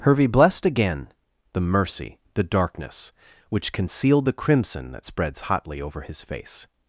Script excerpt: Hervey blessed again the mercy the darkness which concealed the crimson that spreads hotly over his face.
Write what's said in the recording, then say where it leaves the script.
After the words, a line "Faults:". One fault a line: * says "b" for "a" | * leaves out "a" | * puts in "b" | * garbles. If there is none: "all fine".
Hervey blessed again the mercy the darkness which concealed the crimson that spreads hotly over his face.
Faults:
all fine